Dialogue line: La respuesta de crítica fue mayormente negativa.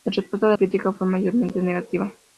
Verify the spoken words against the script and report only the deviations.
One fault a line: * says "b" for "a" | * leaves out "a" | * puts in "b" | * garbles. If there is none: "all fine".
all fine